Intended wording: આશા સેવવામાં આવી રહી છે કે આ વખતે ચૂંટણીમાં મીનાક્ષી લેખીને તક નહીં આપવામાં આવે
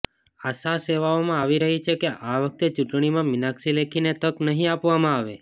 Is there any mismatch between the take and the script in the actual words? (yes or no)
no